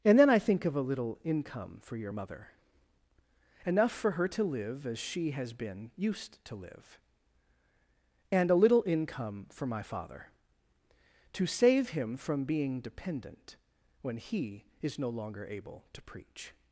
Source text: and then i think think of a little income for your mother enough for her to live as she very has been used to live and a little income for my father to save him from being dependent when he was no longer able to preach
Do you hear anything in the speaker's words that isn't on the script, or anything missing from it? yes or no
yes